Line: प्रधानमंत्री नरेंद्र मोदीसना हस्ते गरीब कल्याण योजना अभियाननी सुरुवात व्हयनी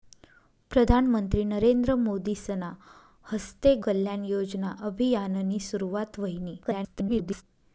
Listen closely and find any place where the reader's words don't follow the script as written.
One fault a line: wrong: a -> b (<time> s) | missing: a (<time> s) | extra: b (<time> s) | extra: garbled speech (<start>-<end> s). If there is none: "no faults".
missing: गरीब (3.7 s)
extra: garbled speech (6.6-7.4 s)